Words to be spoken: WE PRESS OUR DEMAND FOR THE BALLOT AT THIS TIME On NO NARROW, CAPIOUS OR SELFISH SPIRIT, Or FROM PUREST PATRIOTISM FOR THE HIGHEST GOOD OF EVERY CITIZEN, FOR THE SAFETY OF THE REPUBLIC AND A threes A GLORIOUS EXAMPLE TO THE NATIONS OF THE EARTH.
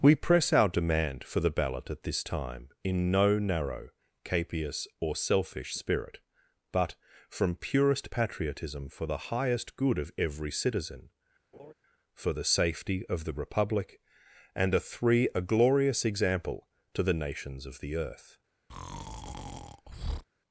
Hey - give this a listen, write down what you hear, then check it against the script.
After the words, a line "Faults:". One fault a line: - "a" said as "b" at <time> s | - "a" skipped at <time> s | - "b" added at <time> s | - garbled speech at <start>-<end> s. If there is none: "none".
WE PRESS OUR DEMAND FOR THE BALLOT AT THIS TIME IN NO NARROW, CAPIOUS OR SELFISH SPIRIT, BUT FROM PUREST PATRIOTISM FOR THE HIGHEST GOOD OF EVERY CITIZEN, FOR THE SAFETY OF THE REPUBLIC AND A three A GLORIOUS EXAMPLE TO THE NATIONS OF THE EARTH.
Faults:
- "On" said as "IN" at 2.8 s
- "Or" said as "BUT" at 6.7 s
- "threes" said as "three" at 14.8 s